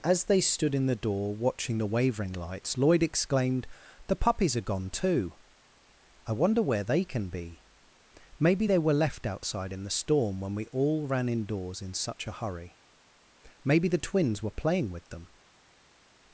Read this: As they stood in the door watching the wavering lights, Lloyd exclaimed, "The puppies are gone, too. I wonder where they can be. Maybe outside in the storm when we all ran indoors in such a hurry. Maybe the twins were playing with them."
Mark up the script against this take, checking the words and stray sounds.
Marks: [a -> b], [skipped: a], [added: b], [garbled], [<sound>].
As they stood in the door watching the wavering lights, Lloyd exclaimed, "The puppies are gone, too. I wonder where they can be. Maybe [added: they were left] outside in the storm when we all ran indoors in such a hurry. Maybe the twins were playing with them."